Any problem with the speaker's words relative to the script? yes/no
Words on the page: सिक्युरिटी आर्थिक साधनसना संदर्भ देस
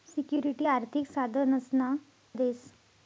yes